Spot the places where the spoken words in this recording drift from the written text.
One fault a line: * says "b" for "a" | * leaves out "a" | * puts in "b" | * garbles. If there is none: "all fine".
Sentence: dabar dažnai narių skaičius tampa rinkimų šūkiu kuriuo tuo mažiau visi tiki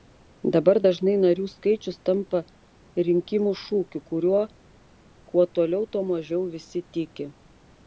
* puts in "kuo toliau"